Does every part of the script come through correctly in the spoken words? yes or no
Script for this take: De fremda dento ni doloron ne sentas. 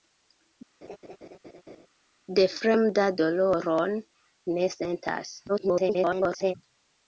no